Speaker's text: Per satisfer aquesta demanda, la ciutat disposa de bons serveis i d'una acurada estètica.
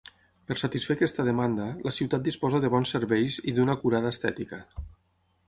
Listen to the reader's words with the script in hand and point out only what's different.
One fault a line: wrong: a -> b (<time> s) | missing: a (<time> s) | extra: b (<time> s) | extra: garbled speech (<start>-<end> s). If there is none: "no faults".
no faults